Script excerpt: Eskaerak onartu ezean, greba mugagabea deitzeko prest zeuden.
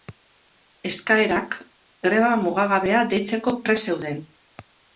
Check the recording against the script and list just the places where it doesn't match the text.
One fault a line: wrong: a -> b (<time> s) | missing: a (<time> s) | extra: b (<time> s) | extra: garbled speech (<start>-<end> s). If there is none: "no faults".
missing: onartu ezean (1.6 s)